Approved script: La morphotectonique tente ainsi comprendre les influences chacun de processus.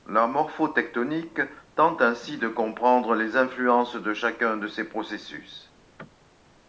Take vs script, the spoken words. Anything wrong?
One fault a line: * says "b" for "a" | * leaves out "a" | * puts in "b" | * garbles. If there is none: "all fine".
* puts in "de"
* puts in "de"
* puts in "ces"